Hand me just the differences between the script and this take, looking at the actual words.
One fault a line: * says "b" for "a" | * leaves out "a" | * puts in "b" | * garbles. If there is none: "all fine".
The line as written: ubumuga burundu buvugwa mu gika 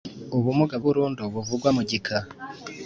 all fine